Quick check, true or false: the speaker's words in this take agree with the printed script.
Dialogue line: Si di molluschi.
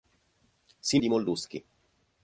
true